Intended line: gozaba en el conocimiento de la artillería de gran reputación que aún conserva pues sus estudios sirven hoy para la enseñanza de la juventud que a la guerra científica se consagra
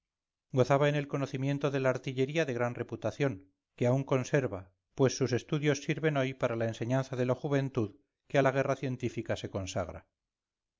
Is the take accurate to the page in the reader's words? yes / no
yes